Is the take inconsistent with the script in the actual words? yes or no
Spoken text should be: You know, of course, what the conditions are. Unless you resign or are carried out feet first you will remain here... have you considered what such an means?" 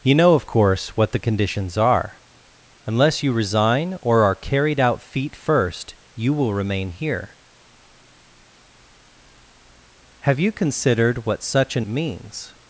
no